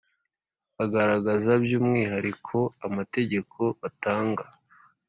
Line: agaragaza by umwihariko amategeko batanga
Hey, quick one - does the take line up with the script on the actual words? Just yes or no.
yes